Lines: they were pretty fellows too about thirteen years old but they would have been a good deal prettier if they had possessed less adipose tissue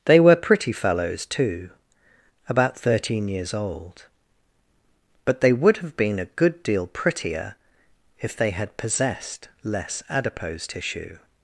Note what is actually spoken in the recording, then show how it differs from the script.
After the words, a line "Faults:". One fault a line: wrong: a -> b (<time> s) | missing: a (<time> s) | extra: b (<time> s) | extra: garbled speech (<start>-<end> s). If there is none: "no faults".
they were pretty fellows too about thirteen years old but they would have been a good deal prettier if they had possessed less adipose tissue
Faults:
no faults